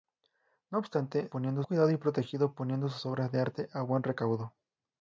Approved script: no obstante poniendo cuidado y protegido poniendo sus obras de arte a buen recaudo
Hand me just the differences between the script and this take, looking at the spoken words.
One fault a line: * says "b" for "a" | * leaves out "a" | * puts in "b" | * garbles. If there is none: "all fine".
all fine